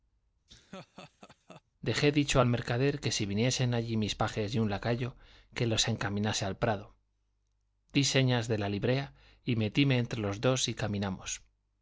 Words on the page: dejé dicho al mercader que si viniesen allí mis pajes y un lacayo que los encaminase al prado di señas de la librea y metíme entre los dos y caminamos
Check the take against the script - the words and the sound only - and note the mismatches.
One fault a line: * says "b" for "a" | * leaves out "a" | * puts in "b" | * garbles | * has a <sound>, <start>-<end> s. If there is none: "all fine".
* has a laugh, 0.5-1.6 s